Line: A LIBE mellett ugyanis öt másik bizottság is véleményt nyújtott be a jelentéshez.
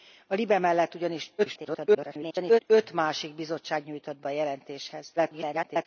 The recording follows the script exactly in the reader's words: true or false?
false